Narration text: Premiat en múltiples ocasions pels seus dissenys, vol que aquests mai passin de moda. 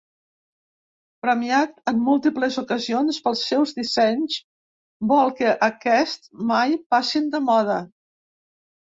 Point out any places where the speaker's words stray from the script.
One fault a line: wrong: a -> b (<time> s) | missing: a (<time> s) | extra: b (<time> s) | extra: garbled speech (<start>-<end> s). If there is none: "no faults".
no faults